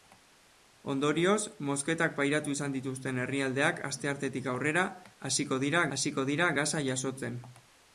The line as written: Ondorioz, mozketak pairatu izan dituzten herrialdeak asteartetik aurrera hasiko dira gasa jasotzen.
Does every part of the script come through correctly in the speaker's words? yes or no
no